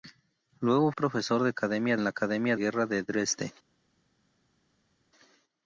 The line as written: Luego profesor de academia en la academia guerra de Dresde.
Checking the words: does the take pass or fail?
pass